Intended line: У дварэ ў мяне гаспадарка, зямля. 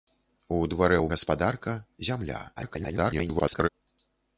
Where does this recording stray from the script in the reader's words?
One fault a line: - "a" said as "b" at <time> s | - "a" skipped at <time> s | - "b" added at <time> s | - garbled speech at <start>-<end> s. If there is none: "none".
- "мяне" skipped at 1.1 s
- garbled speech at 2.6-3.7 s